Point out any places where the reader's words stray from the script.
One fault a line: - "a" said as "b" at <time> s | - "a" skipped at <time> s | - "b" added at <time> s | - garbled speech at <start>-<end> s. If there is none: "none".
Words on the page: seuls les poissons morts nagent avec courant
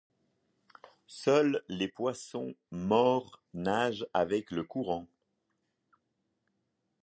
- "le" added at 4.5 s